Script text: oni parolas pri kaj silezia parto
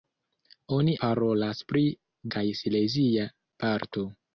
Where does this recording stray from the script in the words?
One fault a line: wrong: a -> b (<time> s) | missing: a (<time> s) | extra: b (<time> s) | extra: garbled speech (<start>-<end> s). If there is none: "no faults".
no faults